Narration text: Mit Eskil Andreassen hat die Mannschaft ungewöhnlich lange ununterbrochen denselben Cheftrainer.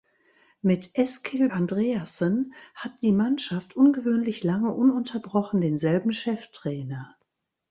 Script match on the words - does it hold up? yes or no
yes